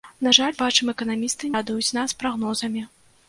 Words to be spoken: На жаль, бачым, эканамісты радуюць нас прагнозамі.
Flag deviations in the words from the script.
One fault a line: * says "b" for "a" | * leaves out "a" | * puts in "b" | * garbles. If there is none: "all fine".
all fine